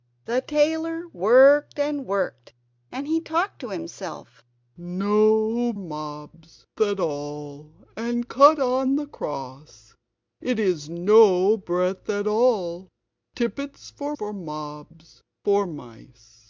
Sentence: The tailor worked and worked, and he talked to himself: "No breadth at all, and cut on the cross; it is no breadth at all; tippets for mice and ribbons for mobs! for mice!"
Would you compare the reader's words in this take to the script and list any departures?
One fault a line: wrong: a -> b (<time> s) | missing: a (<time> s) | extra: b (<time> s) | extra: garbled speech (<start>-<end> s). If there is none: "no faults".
wrong: breadth -> mobs (5.8 s)
missing: mice and ribbons (14.1 s)